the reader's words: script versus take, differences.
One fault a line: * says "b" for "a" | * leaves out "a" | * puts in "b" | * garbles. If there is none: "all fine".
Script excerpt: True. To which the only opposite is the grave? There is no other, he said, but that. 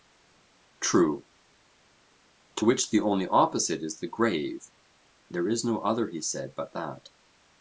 all fine